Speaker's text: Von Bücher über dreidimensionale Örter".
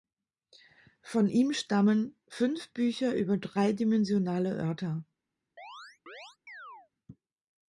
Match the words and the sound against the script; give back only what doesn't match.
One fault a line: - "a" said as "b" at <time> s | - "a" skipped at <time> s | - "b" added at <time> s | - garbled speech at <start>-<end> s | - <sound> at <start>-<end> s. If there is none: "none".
- "ihm stammen Fünf" added at 1.3 s
- chirp at 5.6-6.9 s